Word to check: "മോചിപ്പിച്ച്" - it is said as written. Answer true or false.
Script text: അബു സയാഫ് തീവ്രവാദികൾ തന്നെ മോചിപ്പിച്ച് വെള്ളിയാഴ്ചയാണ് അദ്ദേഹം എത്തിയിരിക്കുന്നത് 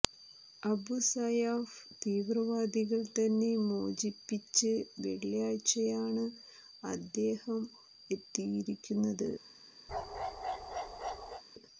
true